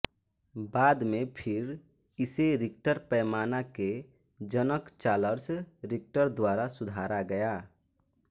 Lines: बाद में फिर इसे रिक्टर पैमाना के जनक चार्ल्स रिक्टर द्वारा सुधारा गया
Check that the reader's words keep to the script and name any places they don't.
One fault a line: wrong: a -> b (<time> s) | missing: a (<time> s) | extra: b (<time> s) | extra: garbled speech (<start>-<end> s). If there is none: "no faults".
no faults